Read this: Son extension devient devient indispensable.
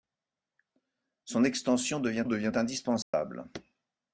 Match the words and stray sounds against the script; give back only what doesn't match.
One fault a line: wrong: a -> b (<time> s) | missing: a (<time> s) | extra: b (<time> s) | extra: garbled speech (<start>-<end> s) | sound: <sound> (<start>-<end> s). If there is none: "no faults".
sound: dropout (3.0-3.1 s)